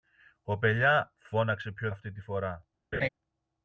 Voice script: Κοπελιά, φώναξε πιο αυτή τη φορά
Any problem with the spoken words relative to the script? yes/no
no